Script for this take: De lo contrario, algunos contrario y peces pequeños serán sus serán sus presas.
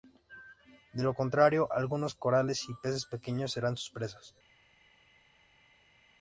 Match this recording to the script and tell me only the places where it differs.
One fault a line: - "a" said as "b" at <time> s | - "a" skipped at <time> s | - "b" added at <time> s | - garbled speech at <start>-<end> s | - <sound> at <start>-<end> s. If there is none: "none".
- "contrario" said as "corales" at 2.1 s
- "serán sus" skipped at 3.9 s